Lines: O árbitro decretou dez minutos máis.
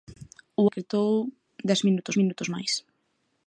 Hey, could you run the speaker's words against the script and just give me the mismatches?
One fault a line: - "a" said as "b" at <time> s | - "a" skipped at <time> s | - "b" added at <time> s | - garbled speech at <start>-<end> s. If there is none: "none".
- "árbitro" skipped at 0.7 s
- "minutos" added at 2.2 s